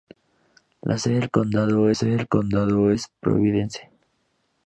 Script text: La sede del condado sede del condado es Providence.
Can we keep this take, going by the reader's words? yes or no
yes